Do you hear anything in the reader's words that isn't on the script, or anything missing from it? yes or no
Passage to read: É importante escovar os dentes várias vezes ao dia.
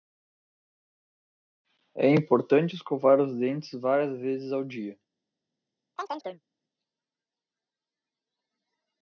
no